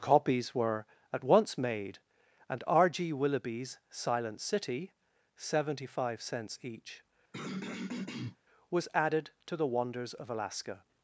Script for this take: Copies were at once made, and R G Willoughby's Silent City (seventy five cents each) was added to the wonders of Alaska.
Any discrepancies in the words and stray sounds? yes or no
yes